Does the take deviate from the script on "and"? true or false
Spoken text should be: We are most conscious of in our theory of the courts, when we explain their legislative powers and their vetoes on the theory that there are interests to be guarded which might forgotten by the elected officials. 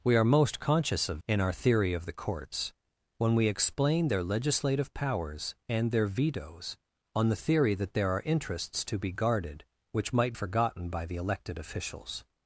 false